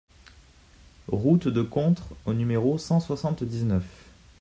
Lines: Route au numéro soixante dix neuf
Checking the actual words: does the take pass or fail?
fail